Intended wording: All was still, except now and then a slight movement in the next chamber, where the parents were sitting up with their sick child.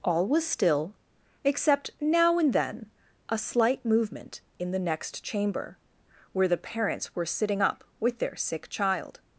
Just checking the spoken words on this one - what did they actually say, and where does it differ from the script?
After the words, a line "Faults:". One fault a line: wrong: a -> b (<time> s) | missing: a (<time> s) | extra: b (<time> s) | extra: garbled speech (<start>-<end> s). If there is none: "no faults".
All was still, except now and then a slight movement in the next chamber, where the parents were sitting up with their sick child.
Faults:
no faults